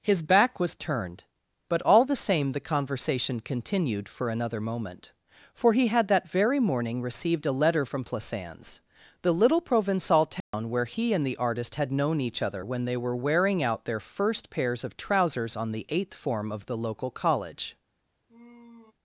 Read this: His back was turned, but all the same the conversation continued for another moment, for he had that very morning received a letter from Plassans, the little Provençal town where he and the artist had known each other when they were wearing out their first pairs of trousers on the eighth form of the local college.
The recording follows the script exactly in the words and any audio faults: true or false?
false